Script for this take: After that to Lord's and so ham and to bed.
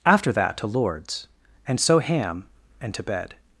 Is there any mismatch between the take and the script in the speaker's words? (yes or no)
no